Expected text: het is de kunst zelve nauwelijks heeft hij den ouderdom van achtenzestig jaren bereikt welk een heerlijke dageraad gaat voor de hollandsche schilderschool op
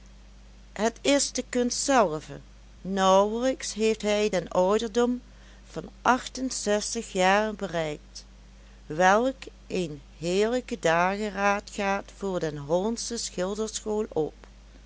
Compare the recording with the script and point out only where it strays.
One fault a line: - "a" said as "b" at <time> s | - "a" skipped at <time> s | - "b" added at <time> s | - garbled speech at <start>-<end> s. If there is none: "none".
none